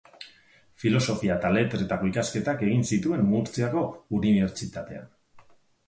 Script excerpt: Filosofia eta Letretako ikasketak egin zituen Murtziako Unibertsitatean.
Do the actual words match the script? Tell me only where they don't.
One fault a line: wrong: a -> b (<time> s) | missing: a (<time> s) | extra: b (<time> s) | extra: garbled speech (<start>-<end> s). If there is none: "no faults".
no faults